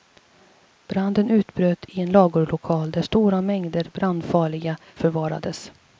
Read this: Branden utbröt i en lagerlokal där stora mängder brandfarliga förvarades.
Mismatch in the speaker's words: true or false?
false